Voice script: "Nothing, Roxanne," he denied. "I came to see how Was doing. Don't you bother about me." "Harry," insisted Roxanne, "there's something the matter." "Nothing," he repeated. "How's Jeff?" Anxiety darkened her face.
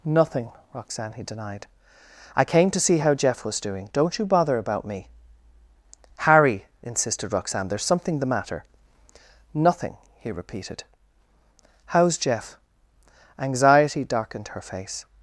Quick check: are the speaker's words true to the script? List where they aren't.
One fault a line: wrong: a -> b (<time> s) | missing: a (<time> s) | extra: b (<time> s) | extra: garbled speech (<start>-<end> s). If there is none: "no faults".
extra: Jeff (3.1 s)